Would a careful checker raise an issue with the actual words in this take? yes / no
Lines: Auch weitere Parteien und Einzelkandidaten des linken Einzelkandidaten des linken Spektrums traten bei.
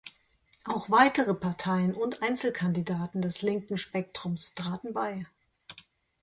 yes